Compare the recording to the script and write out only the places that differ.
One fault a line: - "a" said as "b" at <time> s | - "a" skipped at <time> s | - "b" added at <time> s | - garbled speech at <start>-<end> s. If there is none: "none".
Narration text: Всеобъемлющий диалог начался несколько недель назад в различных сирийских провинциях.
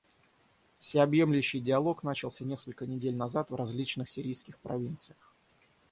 none